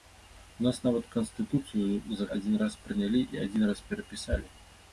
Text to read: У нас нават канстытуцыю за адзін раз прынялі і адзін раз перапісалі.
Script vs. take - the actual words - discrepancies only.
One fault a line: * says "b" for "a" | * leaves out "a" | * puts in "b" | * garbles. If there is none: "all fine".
all fine